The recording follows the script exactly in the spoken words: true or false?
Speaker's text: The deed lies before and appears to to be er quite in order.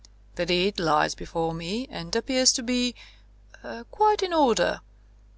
false